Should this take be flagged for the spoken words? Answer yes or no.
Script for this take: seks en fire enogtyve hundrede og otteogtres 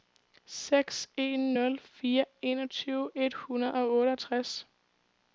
yes